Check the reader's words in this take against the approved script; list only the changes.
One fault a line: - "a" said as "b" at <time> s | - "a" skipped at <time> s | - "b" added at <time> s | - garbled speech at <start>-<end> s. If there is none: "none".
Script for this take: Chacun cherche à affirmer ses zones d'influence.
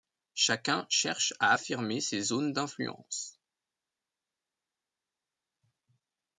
none